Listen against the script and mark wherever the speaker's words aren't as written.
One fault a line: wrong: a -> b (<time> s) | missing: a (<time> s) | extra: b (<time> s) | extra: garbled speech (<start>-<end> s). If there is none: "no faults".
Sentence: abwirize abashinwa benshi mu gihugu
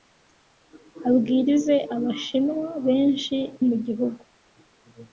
no faults